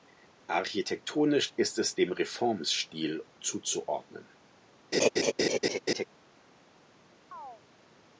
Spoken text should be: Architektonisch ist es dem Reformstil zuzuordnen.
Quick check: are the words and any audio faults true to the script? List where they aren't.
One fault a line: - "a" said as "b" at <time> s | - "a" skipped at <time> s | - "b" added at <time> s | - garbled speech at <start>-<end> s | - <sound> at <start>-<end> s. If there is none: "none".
- laugh at 4.9-6.0 s
- chirp at 7.3-7.6 s